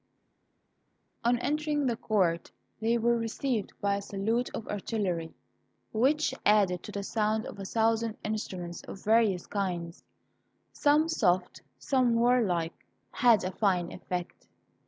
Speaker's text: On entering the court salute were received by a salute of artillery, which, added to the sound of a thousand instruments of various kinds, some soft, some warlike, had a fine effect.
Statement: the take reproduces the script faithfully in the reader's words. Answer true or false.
false